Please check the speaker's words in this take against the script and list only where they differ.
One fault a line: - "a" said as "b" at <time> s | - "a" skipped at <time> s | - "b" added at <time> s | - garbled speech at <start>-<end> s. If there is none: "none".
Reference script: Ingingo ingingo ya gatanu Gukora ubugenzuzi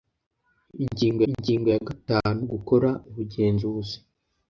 none